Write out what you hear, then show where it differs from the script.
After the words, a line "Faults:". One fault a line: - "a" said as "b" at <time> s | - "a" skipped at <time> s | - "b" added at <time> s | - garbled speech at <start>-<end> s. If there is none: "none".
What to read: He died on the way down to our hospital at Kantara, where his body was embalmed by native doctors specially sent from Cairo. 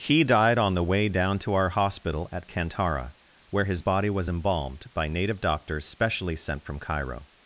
He died on the way down to our hospital at Kantara, where his body was embalmed by native doctors specially sent from Cairo.
Faults:
none